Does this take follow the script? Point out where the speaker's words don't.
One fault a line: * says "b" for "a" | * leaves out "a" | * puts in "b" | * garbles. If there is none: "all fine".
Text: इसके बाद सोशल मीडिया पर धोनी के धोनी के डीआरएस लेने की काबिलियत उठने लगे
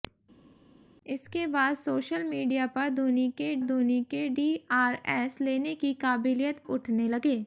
all fine